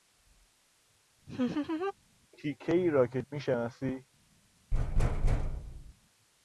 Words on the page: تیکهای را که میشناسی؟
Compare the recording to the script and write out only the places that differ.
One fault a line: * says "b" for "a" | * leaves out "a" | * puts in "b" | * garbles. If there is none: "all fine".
all fine